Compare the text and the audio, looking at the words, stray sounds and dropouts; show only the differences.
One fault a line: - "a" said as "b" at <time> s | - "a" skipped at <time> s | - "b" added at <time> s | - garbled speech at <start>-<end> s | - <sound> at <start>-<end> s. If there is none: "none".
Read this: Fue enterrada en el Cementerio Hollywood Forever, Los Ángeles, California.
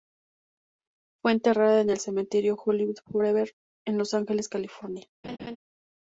- "en" added at 3.9 s
- laugh at 5.2-5.6 s